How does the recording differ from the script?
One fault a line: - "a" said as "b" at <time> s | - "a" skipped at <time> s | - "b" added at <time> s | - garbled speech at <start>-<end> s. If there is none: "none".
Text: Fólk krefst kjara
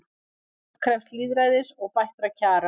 - "lýðræðis og bættra" added at 1.2 s